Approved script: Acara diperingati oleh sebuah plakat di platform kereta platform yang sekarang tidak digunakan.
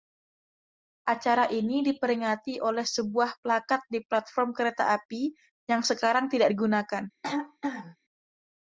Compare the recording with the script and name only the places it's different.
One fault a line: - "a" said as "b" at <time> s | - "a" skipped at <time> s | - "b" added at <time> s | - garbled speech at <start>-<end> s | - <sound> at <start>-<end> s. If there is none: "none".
- "ini" added at 1.5 s
- "platform" said as "api" at 5.0 s
- throat clearing at 7.2-8.0 s